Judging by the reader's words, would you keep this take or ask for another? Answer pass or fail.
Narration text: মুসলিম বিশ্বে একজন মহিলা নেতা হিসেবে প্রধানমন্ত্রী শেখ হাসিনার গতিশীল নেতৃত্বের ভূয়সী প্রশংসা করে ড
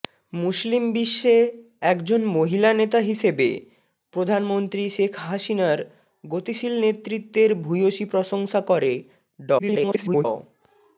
fail